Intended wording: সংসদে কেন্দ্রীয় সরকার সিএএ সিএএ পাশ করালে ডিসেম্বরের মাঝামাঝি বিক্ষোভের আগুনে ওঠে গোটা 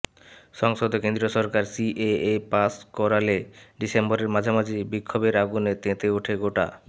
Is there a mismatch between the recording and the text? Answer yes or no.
yes